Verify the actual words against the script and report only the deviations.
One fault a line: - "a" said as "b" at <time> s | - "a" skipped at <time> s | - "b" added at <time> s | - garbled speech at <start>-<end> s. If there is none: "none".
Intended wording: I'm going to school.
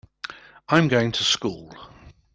none